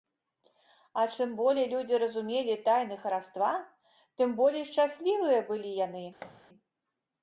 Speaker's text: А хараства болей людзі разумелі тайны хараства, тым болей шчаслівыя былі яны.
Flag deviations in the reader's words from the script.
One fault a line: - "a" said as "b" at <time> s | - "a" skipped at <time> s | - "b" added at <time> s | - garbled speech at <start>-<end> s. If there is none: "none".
- "хараства" said as "чым" at 1.1 s